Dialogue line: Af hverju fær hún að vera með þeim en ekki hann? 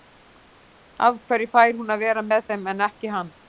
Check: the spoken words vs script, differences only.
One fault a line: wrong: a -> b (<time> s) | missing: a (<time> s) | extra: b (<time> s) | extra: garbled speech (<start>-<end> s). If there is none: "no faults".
no faults